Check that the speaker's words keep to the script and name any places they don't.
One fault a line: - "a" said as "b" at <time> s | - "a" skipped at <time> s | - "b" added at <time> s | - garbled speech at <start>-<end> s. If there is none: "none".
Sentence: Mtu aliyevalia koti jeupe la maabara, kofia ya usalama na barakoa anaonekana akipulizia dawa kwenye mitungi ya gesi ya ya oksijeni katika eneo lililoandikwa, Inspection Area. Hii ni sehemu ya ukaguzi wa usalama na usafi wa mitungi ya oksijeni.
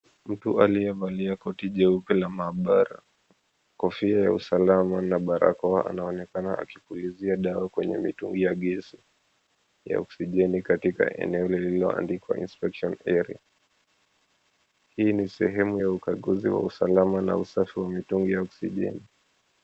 - "ya" skipped at 10.0 s